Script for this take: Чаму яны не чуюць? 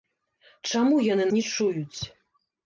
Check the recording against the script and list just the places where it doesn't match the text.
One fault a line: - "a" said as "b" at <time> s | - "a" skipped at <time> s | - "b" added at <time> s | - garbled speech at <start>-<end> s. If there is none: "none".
none